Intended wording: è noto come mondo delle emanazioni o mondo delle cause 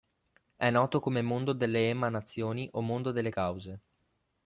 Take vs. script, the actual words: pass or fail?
pass